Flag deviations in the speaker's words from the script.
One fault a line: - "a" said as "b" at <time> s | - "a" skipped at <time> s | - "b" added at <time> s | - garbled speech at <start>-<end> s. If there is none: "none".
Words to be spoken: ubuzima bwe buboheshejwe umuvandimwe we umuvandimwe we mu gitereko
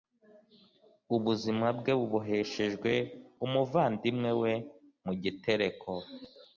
- "umuvandimwe we" skipped at 4.5 s